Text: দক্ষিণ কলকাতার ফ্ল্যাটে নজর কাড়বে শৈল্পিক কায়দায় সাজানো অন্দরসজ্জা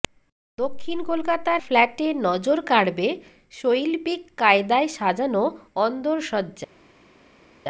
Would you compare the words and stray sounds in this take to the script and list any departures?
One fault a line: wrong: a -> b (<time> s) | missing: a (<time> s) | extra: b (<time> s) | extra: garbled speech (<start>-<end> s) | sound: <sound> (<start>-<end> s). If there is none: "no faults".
no faults